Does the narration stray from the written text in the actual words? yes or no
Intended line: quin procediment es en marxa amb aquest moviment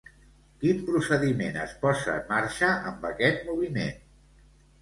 yes